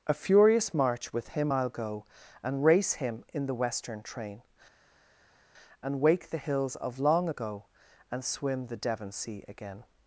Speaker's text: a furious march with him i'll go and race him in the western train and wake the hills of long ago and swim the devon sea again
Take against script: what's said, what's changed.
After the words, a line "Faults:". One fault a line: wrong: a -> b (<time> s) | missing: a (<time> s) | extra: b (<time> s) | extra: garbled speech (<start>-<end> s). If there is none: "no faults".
a furious march with him i'll go and race him in the western train and wake the hills of long ago and swim the devon sea again
Faults:
no faults